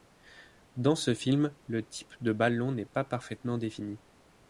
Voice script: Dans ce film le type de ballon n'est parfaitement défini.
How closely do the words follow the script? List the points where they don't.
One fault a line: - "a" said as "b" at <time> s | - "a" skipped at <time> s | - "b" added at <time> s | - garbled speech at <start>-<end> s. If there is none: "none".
- "pas" added at 2.9 s